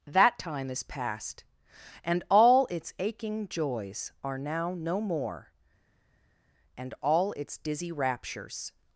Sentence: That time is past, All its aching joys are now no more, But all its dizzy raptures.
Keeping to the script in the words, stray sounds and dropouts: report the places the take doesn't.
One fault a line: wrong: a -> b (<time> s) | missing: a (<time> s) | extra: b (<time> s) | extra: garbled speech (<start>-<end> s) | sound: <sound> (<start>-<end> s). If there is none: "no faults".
extra: And (2.0 s)
wrong: But -> And (6.8 s)